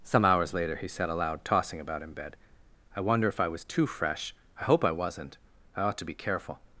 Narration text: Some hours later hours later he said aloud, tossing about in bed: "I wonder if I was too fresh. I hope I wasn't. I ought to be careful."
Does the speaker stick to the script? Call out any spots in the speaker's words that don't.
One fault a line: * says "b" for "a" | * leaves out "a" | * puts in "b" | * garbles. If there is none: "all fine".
* leaves out "hours later"